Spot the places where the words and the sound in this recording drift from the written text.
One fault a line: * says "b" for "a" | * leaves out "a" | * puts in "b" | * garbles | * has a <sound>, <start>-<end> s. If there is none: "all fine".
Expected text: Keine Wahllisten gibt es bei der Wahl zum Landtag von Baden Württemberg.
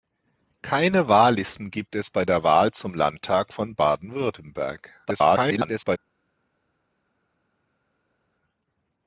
* garbles